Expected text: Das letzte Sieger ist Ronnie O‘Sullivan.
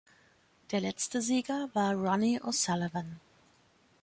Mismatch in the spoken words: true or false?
true